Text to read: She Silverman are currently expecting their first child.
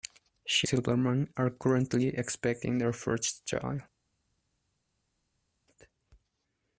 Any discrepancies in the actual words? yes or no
no